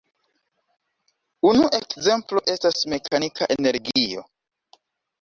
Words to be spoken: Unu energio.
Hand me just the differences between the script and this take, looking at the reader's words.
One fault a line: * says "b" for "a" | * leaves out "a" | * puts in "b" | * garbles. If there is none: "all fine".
* puts in "ekzemplo estas mekanika"